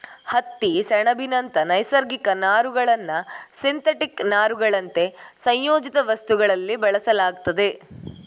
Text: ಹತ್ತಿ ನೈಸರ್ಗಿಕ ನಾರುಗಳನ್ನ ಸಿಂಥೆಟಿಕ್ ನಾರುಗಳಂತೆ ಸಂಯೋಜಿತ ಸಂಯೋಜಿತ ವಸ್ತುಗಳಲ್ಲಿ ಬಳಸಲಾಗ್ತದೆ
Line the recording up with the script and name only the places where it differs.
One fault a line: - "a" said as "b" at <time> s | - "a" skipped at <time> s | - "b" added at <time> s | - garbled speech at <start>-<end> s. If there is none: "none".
- "ಸೆಣಬಿನಂತ" added at 0.8 s
- "ಸಂಯೋಜಿತ" skipped at 6.0 s